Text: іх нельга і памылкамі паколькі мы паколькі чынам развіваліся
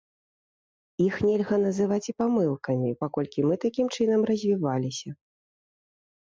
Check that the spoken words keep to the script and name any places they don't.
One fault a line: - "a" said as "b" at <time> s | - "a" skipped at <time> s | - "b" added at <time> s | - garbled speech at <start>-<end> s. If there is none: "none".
- "называць" added at 1.6 s
- "паколькі" said as "такім" at 3.7 s